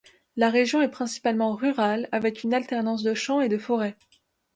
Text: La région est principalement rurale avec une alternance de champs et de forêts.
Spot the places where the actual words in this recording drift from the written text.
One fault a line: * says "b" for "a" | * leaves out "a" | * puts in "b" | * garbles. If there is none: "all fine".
all fine